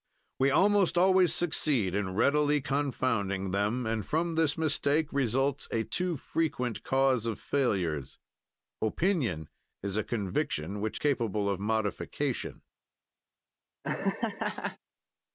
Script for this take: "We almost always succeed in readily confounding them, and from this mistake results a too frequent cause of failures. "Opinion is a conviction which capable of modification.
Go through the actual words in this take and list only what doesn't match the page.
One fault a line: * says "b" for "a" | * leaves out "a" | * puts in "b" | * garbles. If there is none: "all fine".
all fine